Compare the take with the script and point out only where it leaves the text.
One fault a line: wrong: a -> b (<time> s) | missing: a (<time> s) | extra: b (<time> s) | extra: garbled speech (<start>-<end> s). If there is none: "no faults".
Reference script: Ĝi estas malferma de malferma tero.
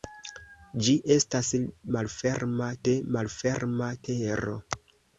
no faults